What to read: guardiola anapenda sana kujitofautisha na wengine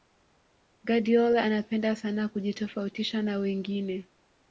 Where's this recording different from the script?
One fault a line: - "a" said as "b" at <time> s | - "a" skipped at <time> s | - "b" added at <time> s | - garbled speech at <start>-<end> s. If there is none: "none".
none